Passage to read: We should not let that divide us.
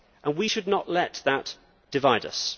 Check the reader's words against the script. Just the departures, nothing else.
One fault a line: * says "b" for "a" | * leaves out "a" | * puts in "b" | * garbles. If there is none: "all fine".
all fine